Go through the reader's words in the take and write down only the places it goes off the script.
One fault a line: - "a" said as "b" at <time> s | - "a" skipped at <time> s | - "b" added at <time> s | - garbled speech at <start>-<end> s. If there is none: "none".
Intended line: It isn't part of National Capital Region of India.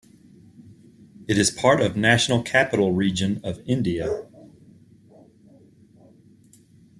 - "isn't" said as "is" at 1.4 s